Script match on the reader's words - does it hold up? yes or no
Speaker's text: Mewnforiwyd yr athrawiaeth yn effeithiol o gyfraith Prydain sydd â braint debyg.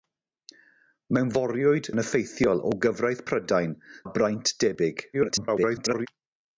no